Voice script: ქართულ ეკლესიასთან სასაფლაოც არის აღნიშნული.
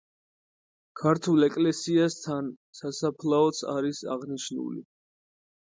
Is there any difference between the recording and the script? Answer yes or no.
no